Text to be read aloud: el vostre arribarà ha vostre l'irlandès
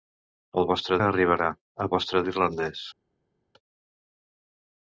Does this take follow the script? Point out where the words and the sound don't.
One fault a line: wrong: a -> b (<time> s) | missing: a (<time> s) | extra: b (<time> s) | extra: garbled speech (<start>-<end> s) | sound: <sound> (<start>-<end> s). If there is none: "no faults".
no faults